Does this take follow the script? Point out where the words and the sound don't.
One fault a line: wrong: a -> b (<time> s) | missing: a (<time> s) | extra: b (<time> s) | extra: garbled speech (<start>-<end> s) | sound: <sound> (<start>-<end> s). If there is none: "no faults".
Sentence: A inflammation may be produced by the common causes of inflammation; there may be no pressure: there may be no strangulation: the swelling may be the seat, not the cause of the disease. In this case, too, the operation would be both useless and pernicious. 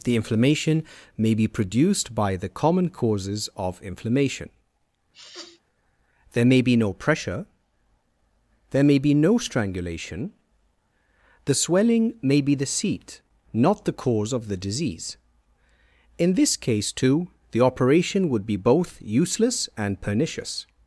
wrong: A -> The (0.0 s)
sound: sneeze (5.1-5.6 s)